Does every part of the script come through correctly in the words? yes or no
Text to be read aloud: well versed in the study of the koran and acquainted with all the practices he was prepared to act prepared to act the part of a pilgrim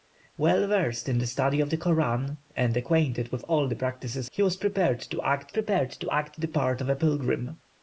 yes